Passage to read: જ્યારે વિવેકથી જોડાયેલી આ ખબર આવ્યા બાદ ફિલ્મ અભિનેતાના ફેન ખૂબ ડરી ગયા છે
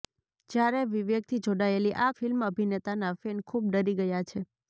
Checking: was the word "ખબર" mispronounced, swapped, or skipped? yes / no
yes